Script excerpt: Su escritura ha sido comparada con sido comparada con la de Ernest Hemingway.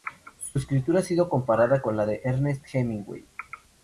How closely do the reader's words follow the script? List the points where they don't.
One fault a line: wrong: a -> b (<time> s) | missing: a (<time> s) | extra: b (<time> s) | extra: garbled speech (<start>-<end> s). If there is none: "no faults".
missing: sido comparada con (2.0 s)